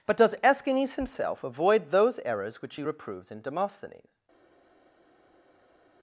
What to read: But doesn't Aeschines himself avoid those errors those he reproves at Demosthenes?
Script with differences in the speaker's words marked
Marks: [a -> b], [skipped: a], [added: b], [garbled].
But [doesn't -> does] Aeschines himself avoid those errors [those -> which] he reproves [at -> in] Demosthenes?